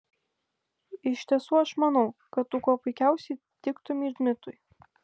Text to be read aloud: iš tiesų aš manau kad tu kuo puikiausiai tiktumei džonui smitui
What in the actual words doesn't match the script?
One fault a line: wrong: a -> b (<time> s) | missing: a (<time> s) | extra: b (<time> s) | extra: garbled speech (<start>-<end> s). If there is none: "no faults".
missing: džonui (4.1 s)